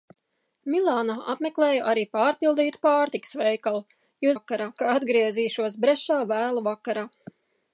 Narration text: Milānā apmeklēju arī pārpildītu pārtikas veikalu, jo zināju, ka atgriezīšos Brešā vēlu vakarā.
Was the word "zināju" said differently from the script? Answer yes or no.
yes